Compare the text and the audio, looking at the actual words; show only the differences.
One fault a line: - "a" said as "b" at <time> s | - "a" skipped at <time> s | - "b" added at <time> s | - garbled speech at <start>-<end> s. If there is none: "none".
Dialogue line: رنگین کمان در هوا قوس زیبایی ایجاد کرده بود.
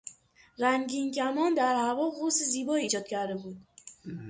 none